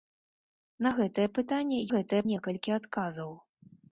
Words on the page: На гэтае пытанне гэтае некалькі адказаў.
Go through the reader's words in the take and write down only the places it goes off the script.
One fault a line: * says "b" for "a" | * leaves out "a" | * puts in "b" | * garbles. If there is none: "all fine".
all fine